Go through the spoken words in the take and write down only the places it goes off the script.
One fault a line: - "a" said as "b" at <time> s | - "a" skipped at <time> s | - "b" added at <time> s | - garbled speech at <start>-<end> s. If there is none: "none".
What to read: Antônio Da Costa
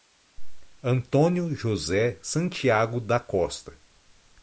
- "José Santiago" added at 1.5 s